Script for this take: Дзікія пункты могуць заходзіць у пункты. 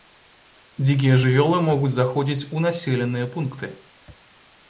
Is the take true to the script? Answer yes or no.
no